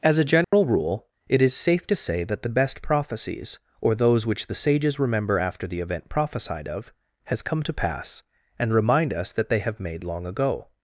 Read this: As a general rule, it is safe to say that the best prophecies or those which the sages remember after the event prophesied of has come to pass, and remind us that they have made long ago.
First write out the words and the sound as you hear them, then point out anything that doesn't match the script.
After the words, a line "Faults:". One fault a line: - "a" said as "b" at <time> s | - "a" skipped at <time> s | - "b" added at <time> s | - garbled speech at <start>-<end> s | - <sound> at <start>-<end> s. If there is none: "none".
As a general rule, it is safe to say that the best prophecies or those which the sages remember after the event prophesied of has come to pass, and remind us that they have made long ago.
Faults:
- dropout at 0.4-0.5 s